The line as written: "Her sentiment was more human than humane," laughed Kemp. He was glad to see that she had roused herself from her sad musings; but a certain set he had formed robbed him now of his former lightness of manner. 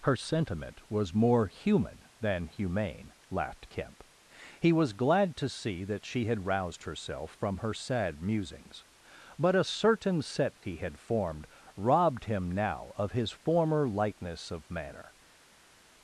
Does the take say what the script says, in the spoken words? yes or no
yes